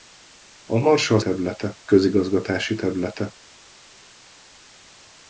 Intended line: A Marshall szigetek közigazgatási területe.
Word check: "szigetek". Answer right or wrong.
wrong